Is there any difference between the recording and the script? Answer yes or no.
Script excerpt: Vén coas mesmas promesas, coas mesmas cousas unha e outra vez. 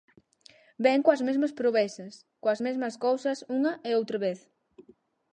no